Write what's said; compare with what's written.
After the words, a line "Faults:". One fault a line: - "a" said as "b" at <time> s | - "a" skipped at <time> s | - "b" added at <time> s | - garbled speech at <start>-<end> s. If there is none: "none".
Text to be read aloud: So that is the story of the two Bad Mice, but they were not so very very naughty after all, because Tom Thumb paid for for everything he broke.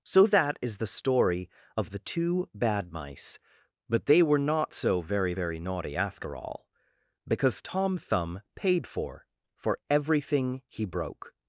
So that is the story of the two Bad Mice, but they were not so very very naughty after all, because Tom Thumb paid for for everything he broke.
Faults:
none